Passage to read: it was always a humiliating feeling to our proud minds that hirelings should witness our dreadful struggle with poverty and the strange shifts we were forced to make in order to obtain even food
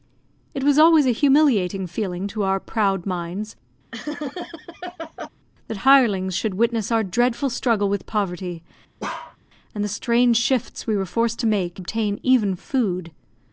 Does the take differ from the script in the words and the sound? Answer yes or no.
yes